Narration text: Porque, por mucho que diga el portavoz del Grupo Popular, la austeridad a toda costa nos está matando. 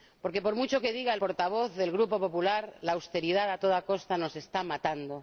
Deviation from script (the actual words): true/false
false